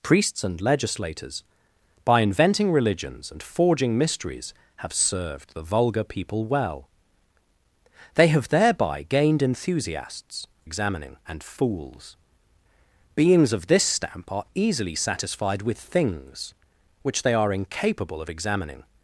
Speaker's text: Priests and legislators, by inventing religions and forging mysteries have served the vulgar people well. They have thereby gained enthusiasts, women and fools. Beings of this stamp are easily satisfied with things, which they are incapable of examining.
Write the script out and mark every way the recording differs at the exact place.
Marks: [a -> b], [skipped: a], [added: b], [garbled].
Priests and legislators, by inventing religions and forging mysteries have served the vulgar people well. They have thereby gained enthusiasts, [women -> examining] and fools. Beings of this stamp are easily satisfied with things, which they are incapable of examining.